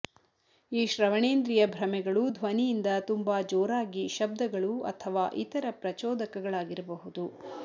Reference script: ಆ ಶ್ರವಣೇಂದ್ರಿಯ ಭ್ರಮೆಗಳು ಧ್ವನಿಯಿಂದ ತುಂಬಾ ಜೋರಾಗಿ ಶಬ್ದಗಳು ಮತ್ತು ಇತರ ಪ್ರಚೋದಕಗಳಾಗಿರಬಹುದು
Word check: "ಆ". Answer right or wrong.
wrong